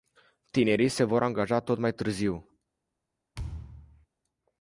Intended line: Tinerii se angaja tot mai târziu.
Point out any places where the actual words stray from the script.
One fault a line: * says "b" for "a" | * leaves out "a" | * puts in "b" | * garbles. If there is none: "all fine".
* puts in "vor"